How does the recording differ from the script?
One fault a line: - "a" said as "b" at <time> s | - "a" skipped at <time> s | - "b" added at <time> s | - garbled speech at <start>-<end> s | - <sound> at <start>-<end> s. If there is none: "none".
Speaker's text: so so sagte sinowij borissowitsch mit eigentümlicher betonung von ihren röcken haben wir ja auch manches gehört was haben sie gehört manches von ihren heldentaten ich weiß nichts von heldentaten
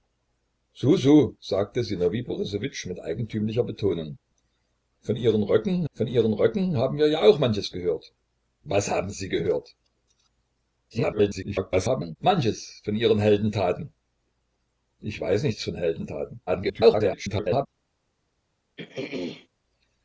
- "von ihren röcken" added at 5.9 s
- garbled speech at 10.9-12.2 s
- garbled speech at 16.5-17.7 s
- throat clearing at 18.8-19.5 s